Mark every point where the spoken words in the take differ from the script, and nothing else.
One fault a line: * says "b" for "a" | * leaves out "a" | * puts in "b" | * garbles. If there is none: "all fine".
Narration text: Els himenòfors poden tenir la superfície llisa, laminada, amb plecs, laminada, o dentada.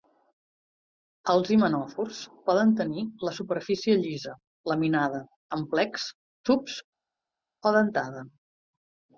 * says "tubs" for "laminada"